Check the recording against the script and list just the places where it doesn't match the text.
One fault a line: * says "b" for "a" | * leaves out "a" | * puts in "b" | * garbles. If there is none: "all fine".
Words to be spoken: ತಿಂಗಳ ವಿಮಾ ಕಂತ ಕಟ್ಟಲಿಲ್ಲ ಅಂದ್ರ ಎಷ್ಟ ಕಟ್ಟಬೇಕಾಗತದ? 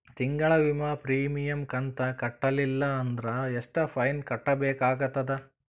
* puts in "ಪ್ರೀಮಿಯಂ"
* puts in "ಫೈನ"